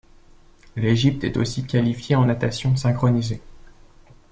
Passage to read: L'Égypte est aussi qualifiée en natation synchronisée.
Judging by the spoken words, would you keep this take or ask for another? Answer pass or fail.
pass